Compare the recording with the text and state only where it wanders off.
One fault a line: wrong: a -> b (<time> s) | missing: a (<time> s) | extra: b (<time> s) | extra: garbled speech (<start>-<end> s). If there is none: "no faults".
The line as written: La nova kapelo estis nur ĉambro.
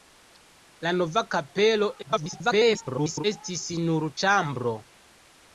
extra: garbled speech (2.0-3.2 s)